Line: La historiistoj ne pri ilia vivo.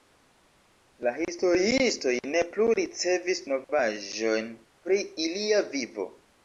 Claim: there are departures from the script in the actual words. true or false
true